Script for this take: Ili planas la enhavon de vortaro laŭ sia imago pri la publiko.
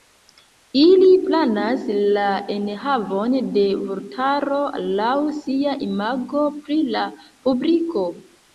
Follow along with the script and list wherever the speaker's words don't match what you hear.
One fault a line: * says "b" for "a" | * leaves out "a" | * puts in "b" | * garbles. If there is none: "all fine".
all fine